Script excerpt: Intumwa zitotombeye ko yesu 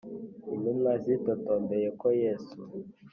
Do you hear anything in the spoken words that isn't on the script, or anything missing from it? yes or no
no